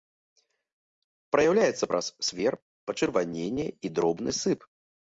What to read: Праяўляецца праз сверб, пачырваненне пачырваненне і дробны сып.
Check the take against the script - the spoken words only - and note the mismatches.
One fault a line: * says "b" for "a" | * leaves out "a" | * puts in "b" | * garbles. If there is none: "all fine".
* leaves out "пачырваненне"